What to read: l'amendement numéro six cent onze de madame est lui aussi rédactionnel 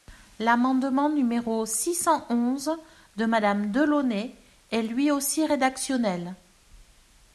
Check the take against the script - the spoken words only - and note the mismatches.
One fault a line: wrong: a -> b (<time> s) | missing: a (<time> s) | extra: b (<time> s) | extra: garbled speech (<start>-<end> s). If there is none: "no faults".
extra: delaunay (3.7 s)